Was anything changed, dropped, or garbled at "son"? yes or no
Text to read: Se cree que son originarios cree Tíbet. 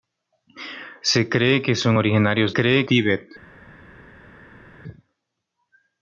no